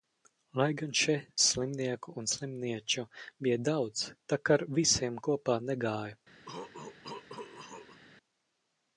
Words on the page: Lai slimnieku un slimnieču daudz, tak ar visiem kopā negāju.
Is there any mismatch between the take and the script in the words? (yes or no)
yes